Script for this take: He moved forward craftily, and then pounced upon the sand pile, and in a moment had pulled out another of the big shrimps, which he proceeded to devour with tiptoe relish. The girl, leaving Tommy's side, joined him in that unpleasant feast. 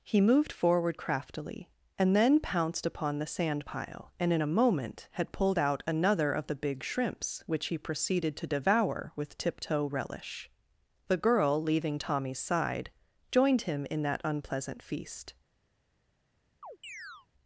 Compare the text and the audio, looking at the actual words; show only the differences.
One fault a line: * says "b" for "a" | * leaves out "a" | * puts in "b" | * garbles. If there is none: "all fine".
all fine